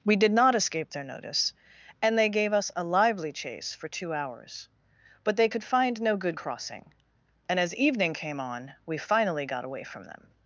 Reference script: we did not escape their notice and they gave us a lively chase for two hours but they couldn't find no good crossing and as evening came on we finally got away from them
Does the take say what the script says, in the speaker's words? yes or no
no